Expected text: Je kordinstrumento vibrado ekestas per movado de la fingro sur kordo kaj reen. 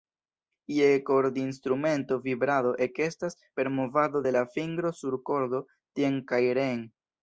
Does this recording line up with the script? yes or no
no